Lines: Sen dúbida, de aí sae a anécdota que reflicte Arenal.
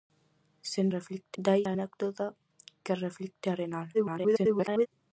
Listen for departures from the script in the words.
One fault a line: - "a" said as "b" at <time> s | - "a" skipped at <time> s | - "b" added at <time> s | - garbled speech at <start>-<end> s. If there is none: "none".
- "dúbida" said as "reflicte" at 1.0 s
- "sae" skipped at 1.6 s
- garbled speech at 3.9-4.9 s